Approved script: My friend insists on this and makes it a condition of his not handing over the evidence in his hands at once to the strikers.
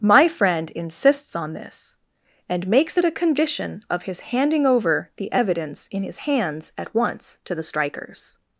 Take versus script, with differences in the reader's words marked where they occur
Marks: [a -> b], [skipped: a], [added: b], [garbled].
My friend insists on this and makes it a condition of his [skipped: not] handing over the evidence in his hands at once to the strikers.